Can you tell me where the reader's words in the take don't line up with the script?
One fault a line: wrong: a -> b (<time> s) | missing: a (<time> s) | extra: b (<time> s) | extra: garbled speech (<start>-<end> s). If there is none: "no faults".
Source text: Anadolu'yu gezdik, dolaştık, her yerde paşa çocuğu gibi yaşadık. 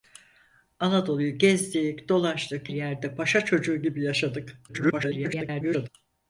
missing: her (2.7 s)
extra: garbled speech (4.7-5.9 s)